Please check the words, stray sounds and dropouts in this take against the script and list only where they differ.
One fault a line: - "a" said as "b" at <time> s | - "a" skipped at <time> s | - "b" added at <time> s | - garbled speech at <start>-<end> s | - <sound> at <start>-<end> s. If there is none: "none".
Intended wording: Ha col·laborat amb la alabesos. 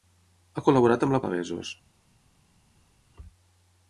none